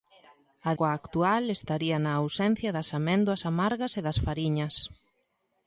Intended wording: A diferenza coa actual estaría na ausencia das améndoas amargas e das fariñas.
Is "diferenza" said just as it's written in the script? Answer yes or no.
no